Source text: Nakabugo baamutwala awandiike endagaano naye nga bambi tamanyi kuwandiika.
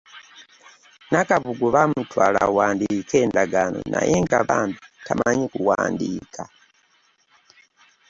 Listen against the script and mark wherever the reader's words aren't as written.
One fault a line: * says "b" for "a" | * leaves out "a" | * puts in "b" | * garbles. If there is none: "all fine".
all fine